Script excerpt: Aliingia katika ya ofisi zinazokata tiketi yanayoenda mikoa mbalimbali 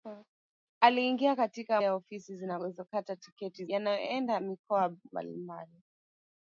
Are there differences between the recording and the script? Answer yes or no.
no